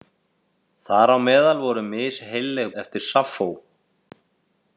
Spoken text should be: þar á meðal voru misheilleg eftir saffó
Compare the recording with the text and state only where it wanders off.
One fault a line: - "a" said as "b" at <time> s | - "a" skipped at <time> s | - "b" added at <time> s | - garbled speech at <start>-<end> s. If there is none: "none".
none